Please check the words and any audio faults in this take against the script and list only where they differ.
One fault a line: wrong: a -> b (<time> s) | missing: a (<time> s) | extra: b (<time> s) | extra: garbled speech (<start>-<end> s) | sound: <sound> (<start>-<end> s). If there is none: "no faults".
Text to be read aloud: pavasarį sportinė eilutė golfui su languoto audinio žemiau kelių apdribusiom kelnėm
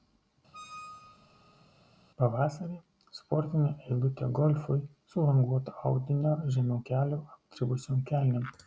sound: squeak (0.5-1.7 s)